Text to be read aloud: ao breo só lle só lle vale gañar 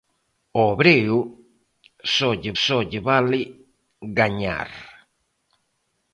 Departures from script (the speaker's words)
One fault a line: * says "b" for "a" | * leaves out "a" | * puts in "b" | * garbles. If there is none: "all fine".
all fine